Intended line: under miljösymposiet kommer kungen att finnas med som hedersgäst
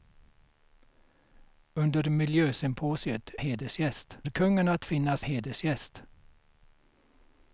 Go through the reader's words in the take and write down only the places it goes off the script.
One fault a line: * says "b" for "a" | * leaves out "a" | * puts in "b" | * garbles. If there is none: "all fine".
* says "hedersgäst" for "kommer"
* leaves out "med som"